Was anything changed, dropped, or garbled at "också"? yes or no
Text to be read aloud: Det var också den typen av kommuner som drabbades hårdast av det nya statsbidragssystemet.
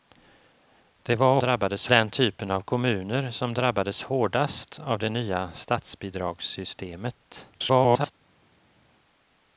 yes